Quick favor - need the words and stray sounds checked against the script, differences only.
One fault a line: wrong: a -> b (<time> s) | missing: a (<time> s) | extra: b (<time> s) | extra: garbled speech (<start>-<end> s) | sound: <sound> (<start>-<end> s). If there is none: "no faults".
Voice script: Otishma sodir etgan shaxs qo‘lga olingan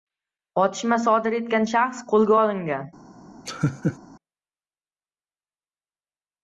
sound: laugh (3.5-4.0 s)